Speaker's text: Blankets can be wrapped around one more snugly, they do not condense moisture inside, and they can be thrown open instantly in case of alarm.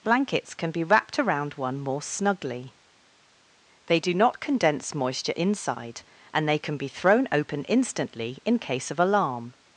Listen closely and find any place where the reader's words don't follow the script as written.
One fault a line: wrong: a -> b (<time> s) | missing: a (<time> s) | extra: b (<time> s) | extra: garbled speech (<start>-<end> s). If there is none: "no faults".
no faults